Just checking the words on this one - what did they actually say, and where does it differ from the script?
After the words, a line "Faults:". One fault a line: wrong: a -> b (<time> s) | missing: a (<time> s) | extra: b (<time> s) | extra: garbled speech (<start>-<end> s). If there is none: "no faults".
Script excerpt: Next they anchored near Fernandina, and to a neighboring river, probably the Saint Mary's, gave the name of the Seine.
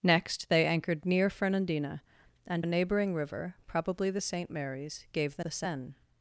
Next they anchored near Fernandina, and a neighboring river, probably the Saint Mary's, gave the the Seine.
Faults:
missing: to (2.6 s)
missing: name of (5.4 s)